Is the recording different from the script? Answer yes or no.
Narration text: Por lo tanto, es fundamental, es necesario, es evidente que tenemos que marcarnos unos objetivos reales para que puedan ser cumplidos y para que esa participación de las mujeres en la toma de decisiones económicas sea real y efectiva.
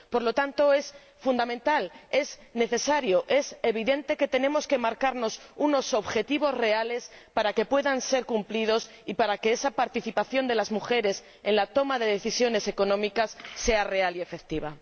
no